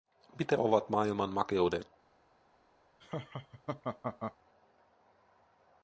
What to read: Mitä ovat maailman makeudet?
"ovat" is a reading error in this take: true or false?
false